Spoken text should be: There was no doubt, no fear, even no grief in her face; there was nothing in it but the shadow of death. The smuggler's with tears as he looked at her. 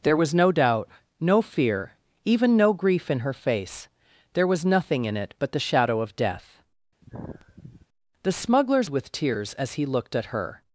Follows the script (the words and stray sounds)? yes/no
no